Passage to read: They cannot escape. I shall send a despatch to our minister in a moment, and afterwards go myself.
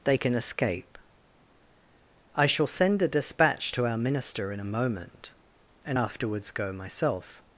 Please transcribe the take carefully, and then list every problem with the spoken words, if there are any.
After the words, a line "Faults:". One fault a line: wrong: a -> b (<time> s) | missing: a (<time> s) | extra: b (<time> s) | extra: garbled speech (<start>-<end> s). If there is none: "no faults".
They can escape. I shall send a despatch to our minister in a moment, and afterwards go myself.
Faults:
wrong: cannot -> can (0.2 s)